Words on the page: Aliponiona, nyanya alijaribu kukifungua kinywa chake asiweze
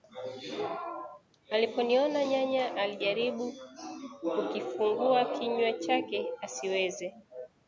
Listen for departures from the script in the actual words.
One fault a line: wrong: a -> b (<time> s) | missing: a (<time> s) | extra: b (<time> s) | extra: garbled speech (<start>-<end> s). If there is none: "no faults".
no faults